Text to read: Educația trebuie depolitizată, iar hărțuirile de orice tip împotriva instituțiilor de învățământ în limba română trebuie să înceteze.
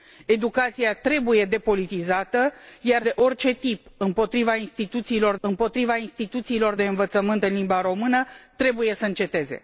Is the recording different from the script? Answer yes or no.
yes